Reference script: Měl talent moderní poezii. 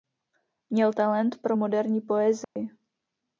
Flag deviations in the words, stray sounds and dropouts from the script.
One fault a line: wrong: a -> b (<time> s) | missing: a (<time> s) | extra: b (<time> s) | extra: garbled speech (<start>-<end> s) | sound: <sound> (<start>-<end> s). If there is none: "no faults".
extra: pro (1.4 s)
sound: dropout (2.4-2.6 s)